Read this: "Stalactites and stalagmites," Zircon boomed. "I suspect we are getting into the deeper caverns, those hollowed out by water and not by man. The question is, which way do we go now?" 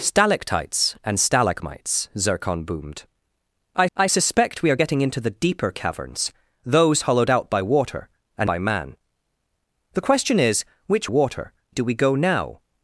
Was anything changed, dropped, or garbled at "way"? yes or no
yes